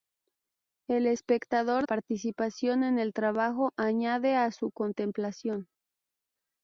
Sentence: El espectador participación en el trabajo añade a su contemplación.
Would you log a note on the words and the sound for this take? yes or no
no